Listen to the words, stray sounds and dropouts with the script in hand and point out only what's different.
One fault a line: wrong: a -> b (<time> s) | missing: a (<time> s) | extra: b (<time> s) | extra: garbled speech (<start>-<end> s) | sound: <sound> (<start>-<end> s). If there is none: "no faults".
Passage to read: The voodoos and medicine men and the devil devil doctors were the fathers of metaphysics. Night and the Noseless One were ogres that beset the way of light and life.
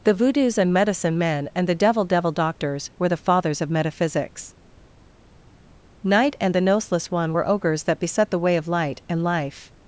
no faults